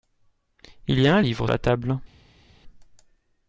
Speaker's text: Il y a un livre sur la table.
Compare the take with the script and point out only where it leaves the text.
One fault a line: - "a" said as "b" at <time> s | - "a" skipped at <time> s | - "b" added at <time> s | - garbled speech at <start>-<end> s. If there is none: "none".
- "sur" skipped at 1.5 s